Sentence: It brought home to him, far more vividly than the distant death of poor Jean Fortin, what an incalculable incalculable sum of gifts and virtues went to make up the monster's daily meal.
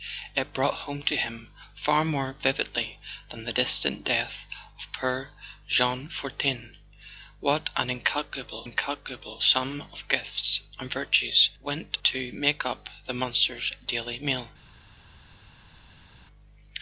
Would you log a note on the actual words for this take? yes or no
no